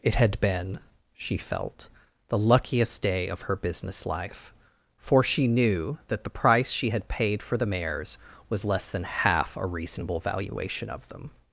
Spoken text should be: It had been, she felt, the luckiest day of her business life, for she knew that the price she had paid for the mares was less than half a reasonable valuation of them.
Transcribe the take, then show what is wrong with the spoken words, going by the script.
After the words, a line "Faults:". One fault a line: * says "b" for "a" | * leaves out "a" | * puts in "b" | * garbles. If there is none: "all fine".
It had been, she felt, the luckiest day of her business life, for she knew that the price she had paid for the mares was less than half a reasonable valuation of them.
Faults:
all fine